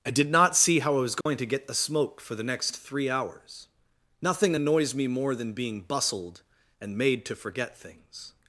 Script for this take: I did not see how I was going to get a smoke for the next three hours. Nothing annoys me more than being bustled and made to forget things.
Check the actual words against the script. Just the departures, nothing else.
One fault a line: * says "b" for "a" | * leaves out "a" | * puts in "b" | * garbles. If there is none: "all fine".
* says "the" for "a"